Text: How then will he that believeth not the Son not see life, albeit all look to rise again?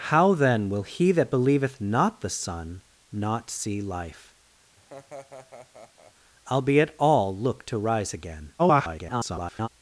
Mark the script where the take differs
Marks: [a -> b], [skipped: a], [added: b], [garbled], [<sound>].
How then will he that believeth not the Son not see life, [laugh] albeit all look to rise again? [garbled]